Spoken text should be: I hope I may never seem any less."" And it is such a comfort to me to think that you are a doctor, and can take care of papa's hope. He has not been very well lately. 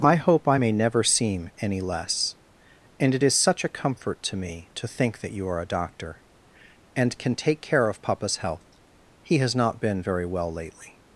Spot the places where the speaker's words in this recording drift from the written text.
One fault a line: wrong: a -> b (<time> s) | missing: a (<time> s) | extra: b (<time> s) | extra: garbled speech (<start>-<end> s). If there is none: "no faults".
wrong: hope -> health (8.4 s)